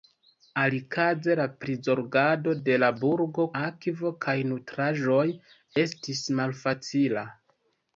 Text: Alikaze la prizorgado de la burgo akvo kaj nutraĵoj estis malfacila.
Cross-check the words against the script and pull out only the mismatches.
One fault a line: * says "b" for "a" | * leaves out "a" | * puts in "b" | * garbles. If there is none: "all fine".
all fine